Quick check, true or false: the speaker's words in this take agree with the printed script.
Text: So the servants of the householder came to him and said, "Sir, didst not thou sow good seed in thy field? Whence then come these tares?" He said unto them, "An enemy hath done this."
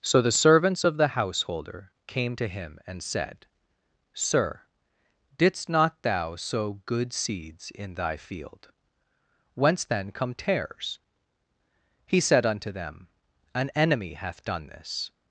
false